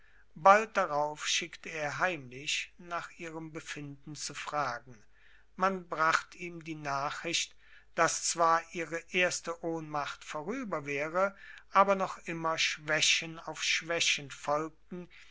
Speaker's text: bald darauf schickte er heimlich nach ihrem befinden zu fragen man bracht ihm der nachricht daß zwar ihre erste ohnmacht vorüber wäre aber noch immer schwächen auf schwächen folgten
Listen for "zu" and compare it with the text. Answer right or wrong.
right